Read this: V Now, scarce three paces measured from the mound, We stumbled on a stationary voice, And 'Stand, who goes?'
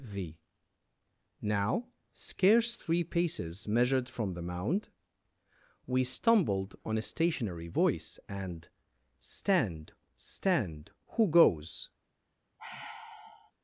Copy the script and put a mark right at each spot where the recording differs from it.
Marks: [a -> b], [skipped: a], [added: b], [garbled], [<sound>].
V Now, scarce three paces measured from the mound, We stumbled on a stationary voice, And 'Stand, [added: stand] who goes?' [sigh]